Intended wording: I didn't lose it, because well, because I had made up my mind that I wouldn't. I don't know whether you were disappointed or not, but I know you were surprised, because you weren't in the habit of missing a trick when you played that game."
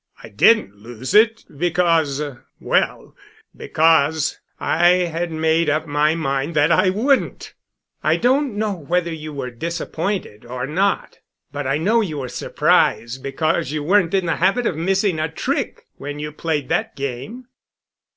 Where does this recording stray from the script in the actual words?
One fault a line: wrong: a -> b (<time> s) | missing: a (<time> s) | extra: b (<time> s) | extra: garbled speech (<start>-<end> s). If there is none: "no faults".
no faults